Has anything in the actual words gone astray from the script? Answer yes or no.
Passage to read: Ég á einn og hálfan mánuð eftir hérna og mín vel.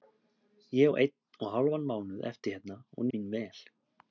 no